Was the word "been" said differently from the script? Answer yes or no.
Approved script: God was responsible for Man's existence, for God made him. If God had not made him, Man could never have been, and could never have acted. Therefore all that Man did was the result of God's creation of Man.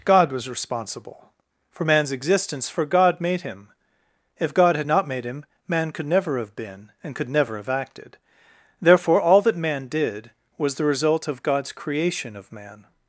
no